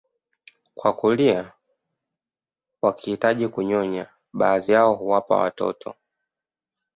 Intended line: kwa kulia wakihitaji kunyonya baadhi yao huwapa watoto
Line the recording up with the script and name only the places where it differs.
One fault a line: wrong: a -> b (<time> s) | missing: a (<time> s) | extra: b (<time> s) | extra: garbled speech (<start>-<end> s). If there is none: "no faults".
no faults